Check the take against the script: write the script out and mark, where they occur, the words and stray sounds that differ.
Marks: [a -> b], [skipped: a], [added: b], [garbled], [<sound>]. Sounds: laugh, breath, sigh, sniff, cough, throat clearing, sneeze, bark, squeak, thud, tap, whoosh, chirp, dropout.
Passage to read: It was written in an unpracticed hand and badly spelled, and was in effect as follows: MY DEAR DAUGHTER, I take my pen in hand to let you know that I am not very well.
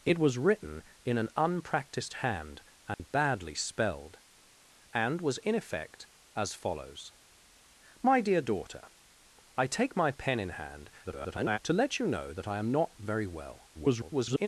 It was written in an unpracticed hand and [dropout] badly spelled, and was in effect as follows: MY DEAR DAUGHTER, I take my pen in hand [garbled] to let you know that I am not very well. [garbled]